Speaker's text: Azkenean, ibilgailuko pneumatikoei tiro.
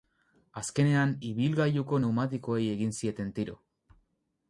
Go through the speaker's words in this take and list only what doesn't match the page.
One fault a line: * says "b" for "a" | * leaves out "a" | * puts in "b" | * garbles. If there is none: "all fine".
* puts in "egin zieten"